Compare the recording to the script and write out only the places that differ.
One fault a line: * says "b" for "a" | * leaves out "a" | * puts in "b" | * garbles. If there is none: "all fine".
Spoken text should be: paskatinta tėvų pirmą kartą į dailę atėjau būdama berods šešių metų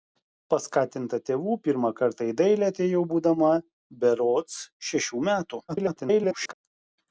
* garbles